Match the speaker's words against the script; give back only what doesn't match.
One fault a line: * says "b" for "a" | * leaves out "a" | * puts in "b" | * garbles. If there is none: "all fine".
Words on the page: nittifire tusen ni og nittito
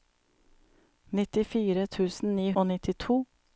all fine